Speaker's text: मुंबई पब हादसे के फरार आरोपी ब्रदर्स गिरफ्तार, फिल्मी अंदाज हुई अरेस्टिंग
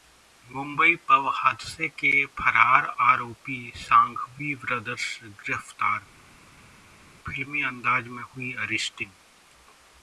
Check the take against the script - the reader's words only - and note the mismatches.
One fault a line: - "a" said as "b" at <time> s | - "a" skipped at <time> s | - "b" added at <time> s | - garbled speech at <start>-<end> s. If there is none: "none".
- "सांघवी" added at 3.8 s
- "में" added at 8.1 s